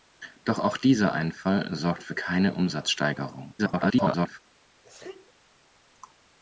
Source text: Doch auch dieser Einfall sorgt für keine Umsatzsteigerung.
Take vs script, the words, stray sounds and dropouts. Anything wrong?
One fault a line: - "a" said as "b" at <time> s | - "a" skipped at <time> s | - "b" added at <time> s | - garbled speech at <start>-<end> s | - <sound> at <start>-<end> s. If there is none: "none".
- garbled speech at 3.6-4.4 s
- sneeze at 4.8-5.3 s